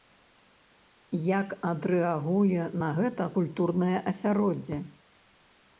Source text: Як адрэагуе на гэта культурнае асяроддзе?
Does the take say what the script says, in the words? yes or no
yes